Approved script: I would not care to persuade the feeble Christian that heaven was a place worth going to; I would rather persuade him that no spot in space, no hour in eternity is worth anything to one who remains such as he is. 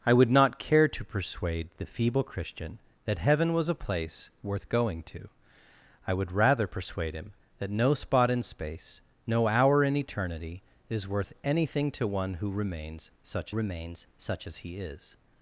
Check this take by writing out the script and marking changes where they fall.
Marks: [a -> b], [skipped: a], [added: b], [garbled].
I would not care to persuade the feeble Christian that heaven was a place worth going to; I would rather persuade him that no spot in space, no hour in eternity is worth anything to one who remains such [added: remains such] as he is.